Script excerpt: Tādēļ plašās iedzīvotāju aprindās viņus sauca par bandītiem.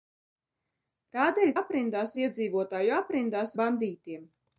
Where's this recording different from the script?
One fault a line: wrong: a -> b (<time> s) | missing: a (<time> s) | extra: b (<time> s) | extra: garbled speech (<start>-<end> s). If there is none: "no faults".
wrong: plašās -> aprindās (1.6 s)
missing: viņus sauca par (3.6 s)